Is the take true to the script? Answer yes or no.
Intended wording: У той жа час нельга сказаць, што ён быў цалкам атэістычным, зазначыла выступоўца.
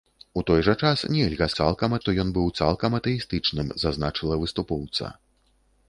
no